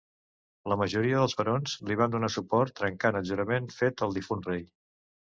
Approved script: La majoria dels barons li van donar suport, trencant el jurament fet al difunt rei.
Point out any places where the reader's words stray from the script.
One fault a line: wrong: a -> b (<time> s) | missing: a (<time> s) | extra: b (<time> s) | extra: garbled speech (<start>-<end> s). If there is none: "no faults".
no faults